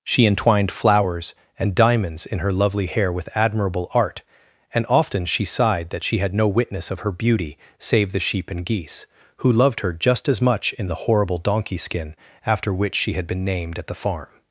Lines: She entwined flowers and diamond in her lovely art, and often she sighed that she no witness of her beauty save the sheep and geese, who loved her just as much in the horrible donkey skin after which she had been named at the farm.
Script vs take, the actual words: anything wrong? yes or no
yes